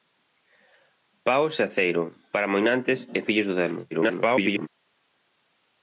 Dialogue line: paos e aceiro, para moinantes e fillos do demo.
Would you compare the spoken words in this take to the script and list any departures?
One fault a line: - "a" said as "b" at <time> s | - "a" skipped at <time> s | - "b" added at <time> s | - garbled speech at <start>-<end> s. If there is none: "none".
- garbled speech at 3.9-4.7 s